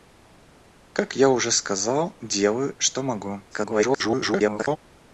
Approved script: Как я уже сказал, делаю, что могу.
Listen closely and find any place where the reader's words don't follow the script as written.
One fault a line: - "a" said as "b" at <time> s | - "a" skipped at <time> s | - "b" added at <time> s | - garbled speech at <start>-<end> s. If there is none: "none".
- garbled speech at 3.5-4.8 s